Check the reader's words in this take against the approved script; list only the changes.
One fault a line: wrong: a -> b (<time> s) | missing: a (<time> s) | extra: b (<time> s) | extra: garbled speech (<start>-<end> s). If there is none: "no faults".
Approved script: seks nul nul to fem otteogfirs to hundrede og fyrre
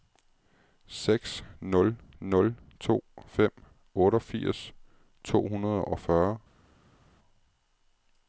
no faults